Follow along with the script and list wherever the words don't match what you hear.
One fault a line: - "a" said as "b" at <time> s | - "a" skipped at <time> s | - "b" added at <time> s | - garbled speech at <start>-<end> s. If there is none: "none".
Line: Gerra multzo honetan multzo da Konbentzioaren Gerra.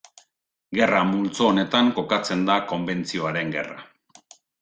- "multzo" said as "kokatzen" at 2.0 s